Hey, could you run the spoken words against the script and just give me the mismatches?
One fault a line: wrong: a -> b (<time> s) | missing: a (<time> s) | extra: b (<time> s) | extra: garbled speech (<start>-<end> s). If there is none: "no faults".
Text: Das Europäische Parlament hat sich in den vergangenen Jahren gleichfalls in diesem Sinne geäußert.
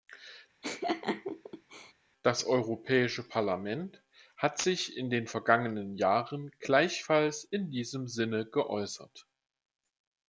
no faults